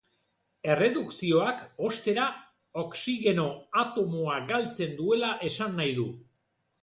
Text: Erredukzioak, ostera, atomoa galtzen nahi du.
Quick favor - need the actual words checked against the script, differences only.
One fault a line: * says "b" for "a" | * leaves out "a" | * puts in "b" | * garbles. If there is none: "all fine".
* puts in "oxigeno"
* puts in "duela esan"